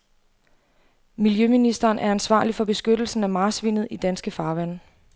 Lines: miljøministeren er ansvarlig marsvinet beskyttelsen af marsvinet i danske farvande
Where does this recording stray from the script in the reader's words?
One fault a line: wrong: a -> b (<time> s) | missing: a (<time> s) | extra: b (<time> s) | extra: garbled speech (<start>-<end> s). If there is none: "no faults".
wrong: marsvinet -> for (2.5 s)